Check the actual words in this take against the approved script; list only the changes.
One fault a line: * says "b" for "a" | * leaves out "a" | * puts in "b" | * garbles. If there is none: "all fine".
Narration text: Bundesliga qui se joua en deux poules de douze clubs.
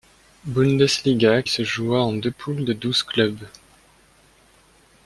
* leaves out "qui"